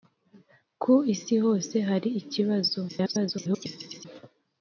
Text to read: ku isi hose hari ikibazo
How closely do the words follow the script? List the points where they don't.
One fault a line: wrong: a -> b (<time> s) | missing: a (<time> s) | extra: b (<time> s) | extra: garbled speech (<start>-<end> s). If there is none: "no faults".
extra: garbled speech (2.9-4.1 s)